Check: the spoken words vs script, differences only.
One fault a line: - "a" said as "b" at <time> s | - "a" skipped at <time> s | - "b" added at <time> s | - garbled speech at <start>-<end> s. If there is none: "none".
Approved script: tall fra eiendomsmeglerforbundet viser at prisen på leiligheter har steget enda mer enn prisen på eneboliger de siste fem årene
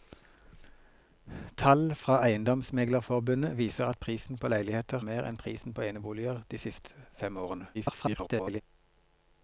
- "har steget enda" skipped at 5.0 s
- garbled speech at 7.7-8.6 s